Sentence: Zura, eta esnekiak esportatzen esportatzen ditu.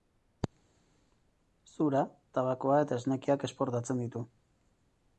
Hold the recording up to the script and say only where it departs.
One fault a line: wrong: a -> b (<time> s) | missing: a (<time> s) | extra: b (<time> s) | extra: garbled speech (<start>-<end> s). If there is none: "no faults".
extra: tabakoa (2.4 s)
missing: esportatzen (4.0 s)